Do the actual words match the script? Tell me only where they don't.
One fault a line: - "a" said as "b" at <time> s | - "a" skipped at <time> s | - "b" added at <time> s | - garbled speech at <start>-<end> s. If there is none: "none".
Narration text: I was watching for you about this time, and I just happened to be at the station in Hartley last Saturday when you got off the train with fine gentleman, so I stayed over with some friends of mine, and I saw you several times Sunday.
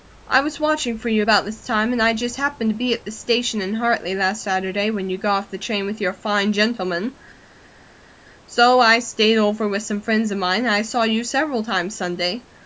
- "your" added at 6.0 s